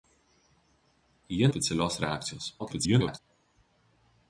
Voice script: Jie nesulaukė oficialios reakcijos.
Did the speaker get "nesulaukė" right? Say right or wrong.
wrong